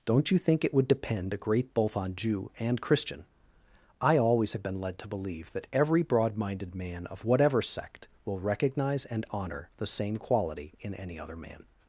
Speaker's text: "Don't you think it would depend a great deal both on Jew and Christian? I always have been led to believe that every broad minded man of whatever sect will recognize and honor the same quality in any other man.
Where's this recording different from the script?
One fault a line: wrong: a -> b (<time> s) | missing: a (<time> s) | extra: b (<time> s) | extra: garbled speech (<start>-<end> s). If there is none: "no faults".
missing: deal (1.7 s)